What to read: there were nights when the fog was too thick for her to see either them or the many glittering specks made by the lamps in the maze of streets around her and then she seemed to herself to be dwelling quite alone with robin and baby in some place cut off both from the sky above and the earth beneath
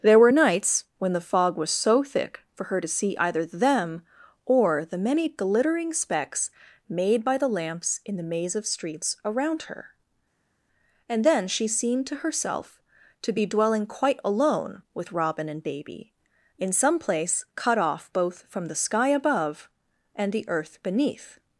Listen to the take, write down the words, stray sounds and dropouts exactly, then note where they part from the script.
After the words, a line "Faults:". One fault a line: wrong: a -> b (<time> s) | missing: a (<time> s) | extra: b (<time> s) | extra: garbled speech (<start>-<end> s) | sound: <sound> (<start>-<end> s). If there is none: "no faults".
there were nights when the fog was so thick for her to see either them or the many glittering specks made by the lamps in the maze of streets around her and then she seemed to herself to be dwelling quite alone with robin and baby in some place cut off both from the sky above and the earth beneath
Faults:
wrong: too -> so (1.7 s)